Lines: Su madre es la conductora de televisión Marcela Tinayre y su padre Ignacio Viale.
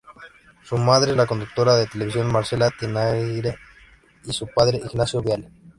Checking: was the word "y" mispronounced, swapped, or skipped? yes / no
no